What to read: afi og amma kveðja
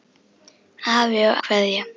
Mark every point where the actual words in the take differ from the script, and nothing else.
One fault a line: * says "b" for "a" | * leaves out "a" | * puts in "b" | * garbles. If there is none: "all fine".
* leaves out "amma"